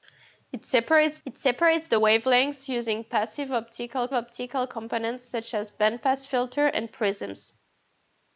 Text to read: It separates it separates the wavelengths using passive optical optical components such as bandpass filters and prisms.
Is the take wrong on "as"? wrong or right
right